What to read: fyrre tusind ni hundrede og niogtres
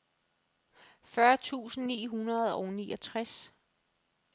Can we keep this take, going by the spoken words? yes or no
yes